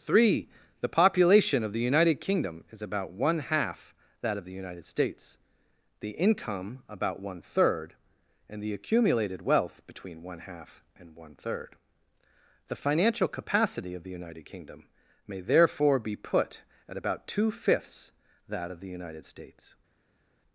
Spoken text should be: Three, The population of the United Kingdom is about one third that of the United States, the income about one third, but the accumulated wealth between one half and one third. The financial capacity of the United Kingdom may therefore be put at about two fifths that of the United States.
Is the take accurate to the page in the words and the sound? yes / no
no